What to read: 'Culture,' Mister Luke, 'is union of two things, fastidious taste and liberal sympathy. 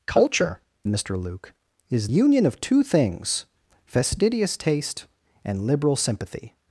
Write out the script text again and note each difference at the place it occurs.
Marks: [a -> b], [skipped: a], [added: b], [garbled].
'Culture,' Mister Luke, 'is union of two things, fastidious taste and liberal sympathy.